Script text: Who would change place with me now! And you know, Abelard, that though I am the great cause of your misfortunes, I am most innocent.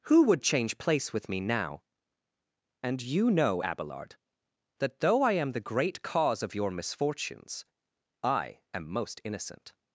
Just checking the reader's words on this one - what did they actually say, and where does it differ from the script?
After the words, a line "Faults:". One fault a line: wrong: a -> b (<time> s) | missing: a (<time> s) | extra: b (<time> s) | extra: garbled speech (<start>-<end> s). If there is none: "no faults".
Who would change place with me now! And you know, Abelard, that though I am the great cause of your misfortunes, I am most innocent.
Faults:
no faults